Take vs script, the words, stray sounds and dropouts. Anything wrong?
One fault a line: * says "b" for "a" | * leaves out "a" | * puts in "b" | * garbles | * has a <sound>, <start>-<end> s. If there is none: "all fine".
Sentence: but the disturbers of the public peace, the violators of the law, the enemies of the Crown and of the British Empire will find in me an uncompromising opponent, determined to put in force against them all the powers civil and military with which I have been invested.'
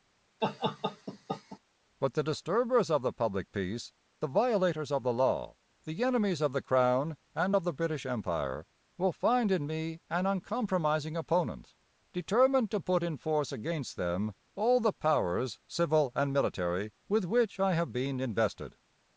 * has a laugh, 0.4-1.6 s